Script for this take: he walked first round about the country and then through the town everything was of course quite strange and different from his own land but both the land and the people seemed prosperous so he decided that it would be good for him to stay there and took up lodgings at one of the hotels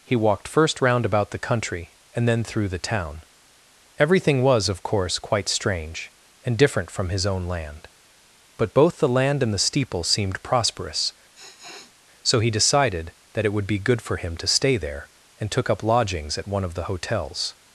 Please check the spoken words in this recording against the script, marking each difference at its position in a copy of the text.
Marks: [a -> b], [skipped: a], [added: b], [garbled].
he walked first round about the country and then through the town everything was of course quite strange and different from his own land but both the land and the [people -> steeple] seemed prosperous so he decided that it would be good for him to stay there and took up lodgings at one of the hotels